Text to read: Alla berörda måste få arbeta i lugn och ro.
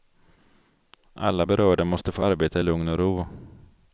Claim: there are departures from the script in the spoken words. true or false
false